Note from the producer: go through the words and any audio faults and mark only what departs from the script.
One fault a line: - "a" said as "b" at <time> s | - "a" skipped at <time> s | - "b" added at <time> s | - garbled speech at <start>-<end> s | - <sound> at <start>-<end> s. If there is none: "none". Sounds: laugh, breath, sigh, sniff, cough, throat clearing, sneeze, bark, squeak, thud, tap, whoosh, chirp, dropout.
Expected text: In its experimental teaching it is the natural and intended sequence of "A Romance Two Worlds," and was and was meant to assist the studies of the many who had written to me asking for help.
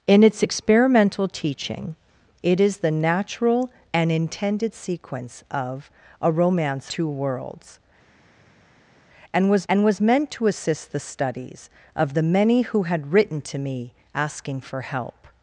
none